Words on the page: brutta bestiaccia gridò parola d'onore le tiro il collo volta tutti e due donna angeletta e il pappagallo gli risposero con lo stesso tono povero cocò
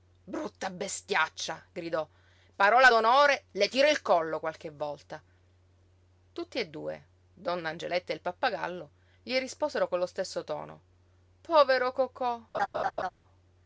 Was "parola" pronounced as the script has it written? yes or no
yes